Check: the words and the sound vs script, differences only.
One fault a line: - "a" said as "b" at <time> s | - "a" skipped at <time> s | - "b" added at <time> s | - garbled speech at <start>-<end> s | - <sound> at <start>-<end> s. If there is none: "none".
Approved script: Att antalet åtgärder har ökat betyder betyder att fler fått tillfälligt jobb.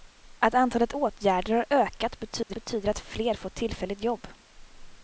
- dropout at 2.4-2.5 s